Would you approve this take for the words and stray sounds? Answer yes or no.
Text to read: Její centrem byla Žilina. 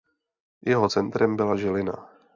no